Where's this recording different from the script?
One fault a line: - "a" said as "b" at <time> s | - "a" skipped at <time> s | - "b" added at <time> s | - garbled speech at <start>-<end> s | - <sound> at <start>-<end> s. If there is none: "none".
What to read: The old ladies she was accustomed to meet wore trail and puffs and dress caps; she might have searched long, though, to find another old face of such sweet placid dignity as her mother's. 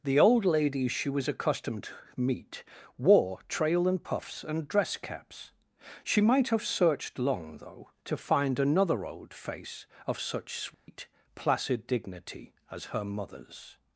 - dropout at 10.7-10.9 s